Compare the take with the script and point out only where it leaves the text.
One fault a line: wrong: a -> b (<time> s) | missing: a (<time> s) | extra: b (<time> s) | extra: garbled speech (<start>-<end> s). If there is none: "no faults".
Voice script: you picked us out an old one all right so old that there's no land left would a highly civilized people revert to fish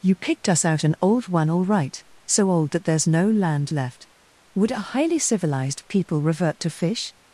no faults